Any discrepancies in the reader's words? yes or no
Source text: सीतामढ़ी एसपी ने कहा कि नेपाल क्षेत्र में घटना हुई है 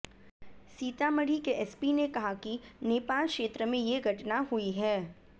yes